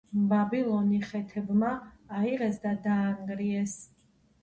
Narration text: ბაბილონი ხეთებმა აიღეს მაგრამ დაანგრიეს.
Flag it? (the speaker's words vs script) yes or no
yes